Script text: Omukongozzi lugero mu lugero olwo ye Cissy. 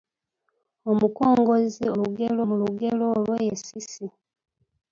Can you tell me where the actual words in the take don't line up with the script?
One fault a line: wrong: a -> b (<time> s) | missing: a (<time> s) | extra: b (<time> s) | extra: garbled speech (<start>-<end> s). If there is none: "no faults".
no faults